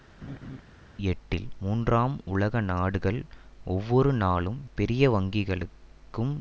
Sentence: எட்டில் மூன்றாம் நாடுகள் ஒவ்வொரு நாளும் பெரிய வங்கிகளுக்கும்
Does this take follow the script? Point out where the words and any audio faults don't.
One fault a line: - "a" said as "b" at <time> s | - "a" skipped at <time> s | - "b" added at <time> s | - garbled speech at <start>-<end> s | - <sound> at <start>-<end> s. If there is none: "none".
- laugh at 0.2-0.6 s
- "உலக" added at 2.2 s